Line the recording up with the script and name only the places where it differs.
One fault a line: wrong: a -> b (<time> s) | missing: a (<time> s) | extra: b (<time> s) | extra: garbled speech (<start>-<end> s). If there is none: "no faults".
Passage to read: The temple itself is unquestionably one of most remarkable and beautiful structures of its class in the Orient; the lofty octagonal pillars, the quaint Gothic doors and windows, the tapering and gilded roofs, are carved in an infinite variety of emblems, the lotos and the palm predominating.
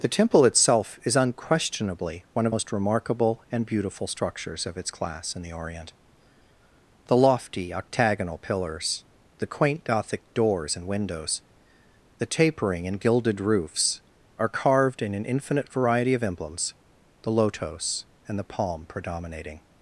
no faults